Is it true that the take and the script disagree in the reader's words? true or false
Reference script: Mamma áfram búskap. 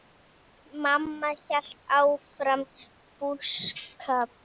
true